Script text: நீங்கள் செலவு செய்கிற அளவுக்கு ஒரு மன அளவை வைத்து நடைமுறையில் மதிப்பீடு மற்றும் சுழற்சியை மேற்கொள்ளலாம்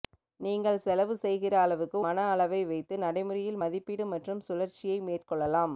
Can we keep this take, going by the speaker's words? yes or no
no